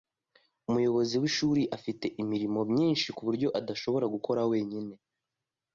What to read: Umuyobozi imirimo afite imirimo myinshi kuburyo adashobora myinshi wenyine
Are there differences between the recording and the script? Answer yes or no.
yes